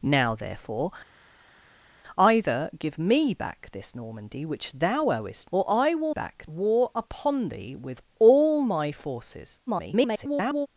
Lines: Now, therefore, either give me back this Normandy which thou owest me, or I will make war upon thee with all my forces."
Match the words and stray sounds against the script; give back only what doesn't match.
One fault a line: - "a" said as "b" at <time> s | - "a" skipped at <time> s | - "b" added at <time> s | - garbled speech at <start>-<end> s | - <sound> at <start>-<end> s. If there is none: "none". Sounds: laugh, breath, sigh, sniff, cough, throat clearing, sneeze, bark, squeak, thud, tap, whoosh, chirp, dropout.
- "me" skipped at 5.5 s
- "make" said as "back" at 6.1 s
- garbled speech at 9.7-10.7 s